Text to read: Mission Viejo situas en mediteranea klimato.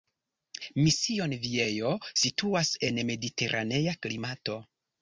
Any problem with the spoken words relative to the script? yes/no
no